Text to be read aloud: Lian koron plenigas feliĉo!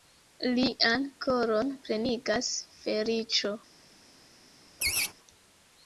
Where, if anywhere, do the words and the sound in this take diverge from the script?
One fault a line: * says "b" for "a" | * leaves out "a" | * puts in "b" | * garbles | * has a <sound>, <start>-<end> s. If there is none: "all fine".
* has a laugh, 4.8-5.1 s